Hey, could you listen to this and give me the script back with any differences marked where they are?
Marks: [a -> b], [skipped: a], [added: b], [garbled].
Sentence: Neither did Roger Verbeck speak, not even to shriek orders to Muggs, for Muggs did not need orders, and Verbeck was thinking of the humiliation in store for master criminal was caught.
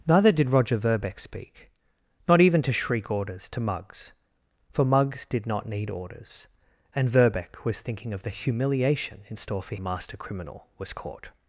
Neither did Roger Verbeck speak, not even to shriek orders to Muggs, for Muggs did not need orders, and Verbeck was thinking of the humiliation in store for master criminal was caught.